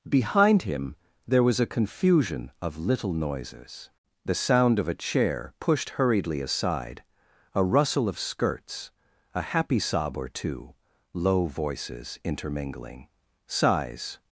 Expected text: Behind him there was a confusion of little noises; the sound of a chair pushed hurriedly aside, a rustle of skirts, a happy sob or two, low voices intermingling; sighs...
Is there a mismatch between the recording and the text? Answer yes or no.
no